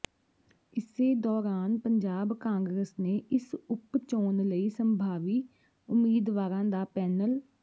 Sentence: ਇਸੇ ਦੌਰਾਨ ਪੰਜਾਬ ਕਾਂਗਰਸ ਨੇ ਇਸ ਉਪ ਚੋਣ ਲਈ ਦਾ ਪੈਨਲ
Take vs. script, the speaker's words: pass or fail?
fail